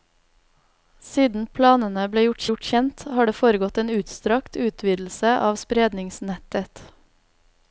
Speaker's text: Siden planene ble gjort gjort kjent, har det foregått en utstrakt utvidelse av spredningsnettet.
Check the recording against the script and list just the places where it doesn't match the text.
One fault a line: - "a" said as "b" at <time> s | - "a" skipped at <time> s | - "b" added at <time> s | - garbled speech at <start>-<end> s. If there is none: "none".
none